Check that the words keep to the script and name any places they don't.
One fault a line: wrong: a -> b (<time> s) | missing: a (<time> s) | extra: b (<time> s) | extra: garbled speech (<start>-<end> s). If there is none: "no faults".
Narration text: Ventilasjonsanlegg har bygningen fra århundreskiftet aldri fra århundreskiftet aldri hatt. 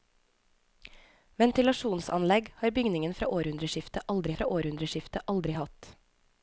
no faults